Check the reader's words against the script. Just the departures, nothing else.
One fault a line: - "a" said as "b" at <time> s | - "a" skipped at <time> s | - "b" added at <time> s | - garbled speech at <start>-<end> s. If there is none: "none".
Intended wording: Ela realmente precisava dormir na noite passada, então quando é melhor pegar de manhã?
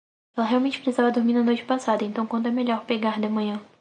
none